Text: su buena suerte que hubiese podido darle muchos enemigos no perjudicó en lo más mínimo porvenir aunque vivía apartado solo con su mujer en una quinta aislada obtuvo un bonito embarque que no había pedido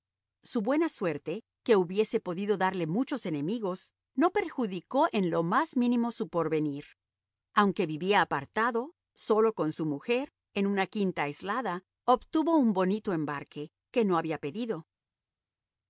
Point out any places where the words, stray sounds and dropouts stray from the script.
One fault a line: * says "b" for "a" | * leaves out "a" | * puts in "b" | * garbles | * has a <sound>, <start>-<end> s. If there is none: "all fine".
* puts in "su"